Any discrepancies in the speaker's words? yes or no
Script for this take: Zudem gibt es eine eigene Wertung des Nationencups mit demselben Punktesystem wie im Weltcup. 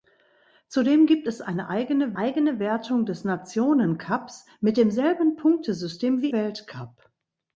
yes